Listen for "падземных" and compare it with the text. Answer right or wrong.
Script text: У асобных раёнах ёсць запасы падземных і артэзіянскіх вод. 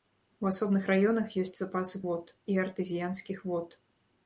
wrong